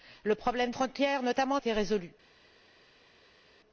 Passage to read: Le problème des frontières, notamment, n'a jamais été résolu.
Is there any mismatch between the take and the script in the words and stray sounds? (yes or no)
yes